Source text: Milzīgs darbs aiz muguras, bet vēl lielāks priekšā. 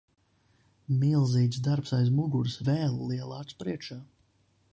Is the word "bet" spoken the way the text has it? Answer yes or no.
no